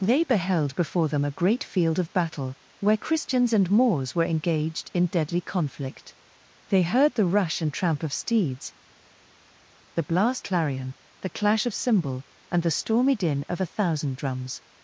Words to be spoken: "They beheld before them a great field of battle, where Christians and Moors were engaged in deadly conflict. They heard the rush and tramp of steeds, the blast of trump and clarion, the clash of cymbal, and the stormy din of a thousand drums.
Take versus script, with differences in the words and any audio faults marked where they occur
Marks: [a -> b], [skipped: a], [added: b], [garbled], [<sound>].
"They beheld before them a great field of battle, where Christians and Moors were engaged in deadly conflict. They heard the rush and tramp of steeds, the blast [skipped: of trump and] clarion, the clash of cymbal, and the stormy din of a thousand drums.